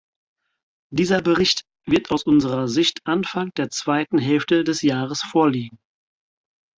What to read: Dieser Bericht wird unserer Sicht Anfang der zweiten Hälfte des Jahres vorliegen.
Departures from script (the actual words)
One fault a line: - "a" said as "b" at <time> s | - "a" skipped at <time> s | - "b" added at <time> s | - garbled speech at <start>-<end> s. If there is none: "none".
- "aus" added at 2.1 s